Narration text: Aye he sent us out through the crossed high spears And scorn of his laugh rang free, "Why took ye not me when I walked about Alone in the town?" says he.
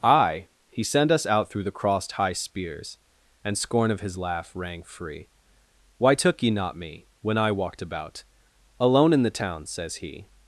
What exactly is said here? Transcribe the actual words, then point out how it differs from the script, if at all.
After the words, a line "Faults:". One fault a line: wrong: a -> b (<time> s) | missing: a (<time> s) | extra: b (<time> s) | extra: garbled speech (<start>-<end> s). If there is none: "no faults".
Aye he sent us out through the crossed high spears And scorn of his laugh rang free, "Why took ye not me when I walked about Alone in the town?" says he.
Faults:
no faults